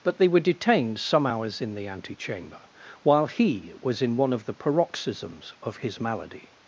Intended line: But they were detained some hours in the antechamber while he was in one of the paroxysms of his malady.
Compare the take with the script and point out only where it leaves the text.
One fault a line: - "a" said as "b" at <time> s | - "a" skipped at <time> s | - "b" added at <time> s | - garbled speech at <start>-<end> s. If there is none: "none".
none